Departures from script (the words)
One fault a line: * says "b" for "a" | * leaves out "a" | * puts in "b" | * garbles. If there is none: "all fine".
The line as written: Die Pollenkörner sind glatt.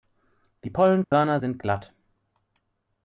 all fine